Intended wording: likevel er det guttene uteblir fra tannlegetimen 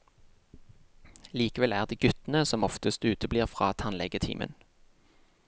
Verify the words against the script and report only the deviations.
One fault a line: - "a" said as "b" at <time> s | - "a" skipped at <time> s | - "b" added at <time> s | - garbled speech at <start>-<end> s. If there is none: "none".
- "som oftest" added at 2.5 s